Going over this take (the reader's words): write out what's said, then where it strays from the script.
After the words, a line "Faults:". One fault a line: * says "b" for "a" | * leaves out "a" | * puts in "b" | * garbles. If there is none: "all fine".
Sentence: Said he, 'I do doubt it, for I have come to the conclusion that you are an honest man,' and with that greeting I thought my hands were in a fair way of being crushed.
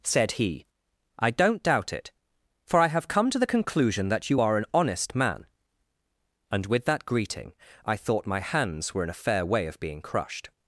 Said he, 'I don't doubt it, for I have come to the conclusion that you are an honest man,' and with that greeting I thought my hands were in a fair way of being crushed.
Faults:
* says "don't" for "do"